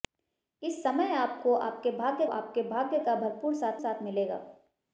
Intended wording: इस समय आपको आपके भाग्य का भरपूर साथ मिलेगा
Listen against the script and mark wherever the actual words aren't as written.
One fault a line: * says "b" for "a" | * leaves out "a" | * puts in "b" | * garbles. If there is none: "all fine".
* puts in "आपके भाग्य"
* puts in "साथ"